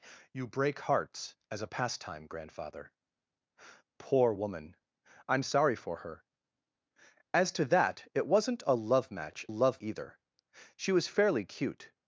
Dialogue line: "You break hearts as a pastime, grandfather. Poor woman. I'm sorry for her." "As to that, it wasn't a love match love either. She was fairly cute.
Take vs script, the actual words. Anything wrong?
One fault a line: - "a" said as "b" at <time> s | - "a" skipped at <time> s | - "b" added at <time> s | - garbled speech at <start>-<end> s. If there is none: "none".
none